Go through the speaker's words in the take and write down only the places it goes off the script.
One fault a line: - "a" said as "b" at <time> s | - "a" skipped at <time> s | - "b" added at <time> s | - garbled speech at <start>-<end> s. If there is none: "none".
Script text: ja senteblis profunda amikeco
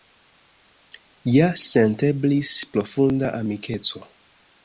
none